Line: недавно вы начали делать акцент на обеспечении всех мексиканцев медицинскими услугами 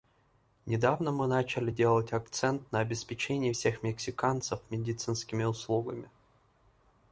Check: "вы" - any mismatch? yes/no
yes